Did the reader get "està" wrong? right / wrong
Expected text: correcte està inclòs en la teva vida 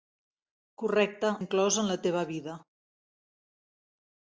wrong